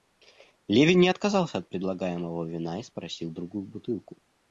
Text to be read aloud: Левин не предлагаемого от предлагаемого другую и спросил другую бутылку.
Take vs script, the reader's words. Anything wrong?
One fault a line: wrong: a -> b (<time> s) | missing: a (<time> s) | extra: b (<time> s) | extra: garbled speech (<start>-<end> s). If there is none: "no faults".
wrong: предлагаемого -> отказался (1.1 s)
wrong: другую -> вина (2.4 s)